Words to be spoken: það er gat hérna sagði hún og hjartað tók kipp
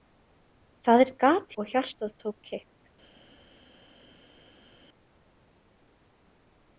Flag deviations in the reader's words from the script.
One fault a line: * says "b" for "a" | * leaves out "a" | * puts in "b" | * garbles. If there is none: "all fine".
* leaves out "hérna sagði hún"